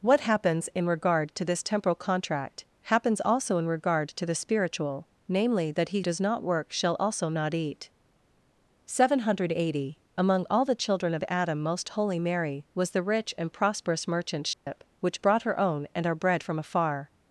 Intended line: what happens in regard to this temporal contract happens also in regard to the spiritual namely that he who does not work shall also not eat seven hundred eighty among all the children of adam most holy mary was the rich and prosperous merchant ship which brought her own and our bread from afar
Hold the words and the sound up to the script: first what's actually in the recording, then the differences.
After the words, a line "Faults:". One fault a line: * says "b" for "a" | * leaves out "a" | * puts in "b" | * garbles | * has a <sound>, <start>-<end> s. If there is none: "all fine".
what happens in regard to this temporal contract happens also in regard to the spiritual namely that he does not work shall also not eat seven hundred eighty among all the children of adam most holy mary was the rich and prosperous merchant ship which brought her own and our bread from afar
Faults:
* leaves out "who"
* has a dropout, 14.5-14.7 s